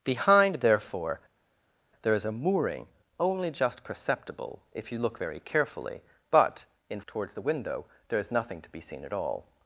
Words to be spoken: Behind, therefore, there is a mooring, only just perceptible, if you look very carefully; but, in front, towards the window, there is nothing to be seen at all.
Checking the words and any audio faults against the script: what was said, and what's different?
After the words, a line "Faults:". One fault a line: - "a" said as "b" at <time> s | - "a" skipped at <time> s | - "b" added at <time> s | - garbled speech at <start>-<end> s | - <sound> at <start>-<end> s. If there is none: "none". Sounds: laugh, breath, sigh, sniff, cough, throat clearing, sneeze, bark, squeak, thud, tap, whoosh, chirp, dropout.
Behind, therefore, there is a mooring, only just perceptible, if you look very carefully; but, in towards the window, there is nothing to be seen at all.
Faults:
- "front" skipped at 7.0 s